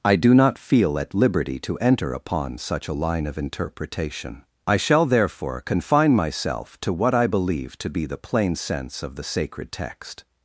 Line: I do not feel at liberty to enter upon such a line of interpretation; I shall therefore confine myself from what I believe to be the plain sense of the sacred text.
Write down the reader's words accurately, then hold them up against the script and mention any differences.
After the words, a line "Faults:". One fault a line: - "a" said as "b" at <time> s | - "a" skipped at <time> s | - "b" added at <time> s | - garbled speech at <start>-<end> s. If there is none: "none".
I do not feel at liberty to enter upon such a line of interpretation; I shall therefore confine myself to what I believe to be the plain sense of the sacred text.
Faults:
- "from" said as "to" at 6.8 s